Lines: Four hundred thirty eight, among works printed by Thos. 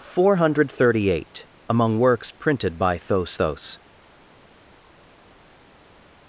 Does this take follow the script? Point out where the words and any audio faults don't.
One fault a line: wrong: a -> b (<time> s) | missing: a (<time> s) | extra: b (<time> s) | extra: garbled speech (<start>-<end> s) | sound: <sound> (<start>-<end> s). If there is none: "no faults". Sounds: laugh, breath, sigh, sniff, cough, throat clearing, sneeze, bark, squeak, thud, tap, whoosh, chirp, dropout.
extra: Thos (3.3 s)